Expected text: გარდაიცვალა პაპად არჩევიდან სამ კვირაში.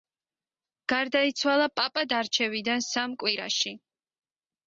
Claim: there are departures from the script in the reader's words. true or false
false